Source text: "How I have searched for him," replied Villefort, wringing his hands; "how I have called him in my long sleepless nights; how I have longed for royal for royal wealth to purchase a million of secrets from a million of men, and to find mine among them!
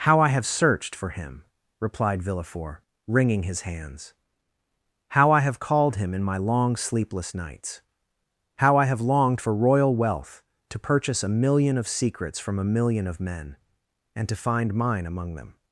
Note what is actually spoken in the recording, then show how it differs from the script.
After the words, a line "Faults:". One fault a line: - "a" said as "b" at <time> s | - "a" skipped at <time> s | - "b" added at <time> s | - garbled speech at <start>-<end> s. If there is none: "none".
"How I have searched for him," replied Villefort, wringing his hands; "how I have called him in my long sleepless nights; how I have longed for royal wealth to purchase a million of secrets from a million of men, and to find mine among them!
Faults:
- "for royal" skipped at 10.0 s